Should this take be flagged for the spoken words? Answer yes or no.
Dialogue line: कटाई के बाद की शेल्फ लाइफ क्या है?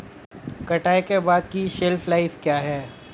no